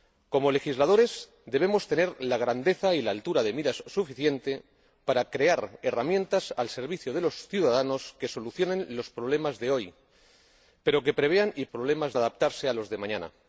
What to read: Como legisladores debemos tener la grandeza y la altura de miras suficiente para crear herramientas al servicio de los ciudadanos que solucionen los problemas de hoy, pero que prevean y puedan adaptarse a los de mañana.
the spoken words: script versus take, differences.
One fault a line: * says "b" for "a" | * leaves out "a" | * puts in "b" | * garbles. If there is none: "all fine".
* says "problemas" for "puedan"